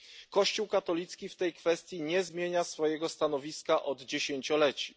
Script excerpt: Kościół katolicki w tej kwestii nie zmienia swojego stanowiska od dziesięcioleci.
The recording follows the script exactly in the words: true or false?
true